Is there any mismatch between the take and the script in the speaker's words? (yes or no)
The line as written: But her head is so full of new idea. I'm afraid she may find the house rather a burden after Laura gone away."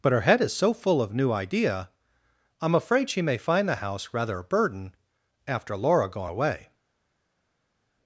no